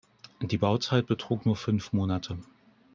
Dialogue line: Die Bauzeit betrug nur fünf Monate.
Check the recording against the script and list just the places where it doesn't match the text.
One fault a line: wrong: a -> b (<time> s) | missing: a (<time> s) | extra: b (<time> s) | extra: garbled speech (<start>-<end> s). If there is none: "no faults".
no faults